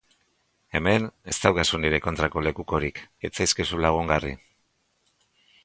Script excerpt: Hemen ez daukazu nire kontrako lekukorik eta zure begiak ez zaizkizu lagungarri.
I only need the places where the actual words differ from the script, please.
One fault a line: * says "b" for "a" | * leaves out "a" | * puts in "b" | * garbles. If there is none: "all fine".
* leaves out "eta zure begiak"